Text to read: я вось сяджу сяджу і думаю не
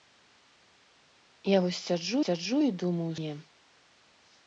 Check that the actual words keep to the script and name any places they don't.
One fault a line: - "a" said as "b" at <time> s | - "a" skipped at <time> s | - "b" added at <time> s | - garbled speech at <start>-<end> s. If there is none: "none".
none